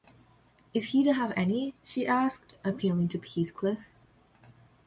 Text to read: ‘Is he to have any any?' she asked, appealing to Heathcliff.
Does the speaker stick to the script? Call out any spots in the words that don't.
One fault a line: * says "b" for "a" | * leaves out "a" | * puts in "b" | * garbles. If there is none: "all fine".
* leaves out "any"